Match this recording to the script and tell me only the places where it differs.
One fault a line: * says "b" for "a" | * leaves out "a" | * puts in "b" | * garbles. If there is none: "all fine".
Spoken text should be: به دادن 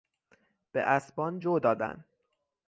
* puts in "اسبان جو"